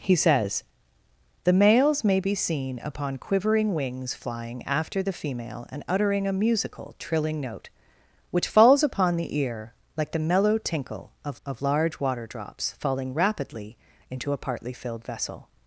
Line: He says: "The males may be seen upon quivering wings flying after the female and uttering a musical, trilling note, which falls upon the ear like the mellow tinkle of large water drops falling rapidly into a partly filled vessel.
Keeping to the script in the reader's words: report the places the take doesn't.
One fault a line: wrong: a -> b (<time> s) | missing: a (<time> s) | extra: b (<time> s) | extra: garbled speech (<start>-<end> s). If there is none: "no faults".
extra: of (11.4 s)